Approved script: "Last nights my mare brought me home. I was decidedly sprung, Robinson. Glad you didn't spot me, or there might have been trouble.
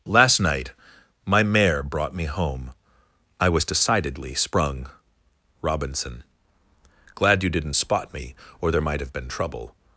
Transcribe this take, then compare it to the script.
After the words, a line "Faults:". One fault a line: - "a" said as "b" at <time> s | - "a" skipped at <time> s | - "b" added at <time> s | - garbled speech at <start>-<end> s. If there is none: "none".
"Last night my mare brought me home. I was decidedly sprung, Robinson. Glad you didn't spot me, or there might have been trouble.
Faults:
- "nights" said as "night" at 0.4 s